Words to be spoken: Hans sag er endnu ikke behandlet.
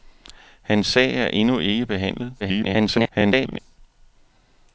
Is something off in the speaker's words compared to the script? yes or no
yes